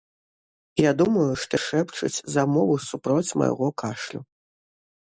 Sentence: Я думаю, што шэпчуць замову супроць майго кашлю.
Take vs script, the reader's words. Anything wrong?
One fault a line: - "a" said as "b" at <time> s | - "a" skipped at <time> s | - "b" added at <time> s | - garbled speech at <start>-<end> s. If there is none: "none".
none